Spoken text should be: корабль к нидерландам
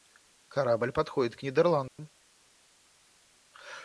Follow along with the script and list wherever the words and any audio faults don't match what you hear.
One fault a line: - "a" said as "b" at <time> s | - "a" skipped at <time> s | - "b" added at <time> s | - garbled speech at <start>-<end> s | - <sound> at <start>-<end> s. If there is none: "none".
- "подходит" added at 0.9 s
- dropout at 1.9-2.0 s